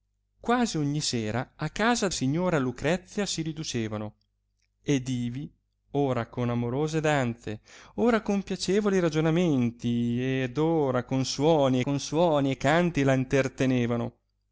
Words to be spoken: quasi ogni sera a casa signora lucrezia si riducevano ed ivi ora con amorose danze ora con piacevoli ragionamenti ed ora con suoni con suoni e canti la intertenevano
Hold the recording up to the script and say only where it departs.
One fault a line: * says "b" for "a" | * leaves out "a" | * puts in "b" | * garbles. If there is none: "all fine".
all fine